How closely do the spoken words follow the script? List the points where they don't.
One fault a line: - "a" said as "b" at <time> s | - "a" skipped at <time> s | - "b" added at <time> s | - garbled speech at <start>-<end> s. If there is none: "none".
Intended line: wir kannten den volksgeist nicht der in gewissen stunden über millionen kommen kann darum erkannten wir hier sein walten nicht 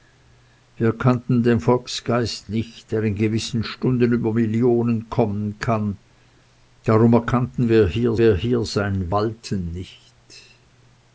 - "wir hier" added at 8.2 s